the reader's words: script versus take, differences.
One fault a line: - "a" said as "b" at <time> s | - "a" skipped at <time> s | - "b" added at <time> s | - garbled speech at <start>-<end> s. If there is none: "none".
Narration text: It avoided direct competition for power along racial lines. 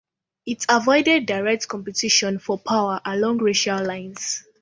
none